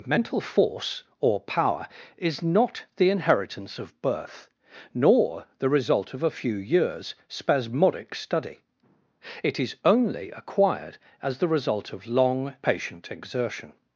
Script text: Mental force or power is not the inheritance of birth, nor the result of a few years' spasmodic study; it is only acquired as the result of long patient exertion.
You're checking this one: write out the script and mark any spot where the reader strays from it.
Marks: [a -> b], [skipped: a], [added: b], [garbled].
Mental force or power is not the inheritance of birth, nor the result of a few years' spasmodic study; it is only acquired as the result of long patient exertion.